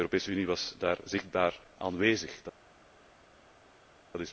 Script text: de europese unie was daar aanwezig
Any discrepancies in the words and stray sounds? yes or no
yes